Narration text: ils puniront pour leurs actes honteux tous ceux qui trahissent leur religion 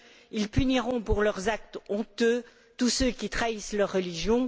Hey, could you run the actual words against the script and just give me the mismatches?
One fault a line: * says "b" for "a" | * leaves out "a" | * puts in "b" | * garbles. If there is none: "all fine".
all fine